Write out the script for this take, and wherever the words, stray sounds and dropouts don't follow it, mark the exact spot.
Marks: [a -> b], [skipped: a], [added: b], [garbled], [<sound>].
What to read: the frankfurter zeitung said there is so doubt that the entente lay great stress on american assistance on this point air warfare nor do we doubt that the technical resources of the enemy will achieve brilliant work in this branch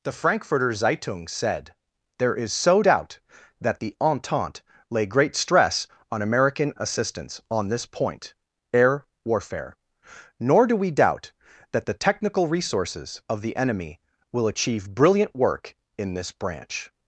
the frankfurter zeitung said there is so doubt that the entente lay great stress on american assistance on this point air warfare nor do we doubt that the technical resources of the enemy will achieve brilliant work in this branch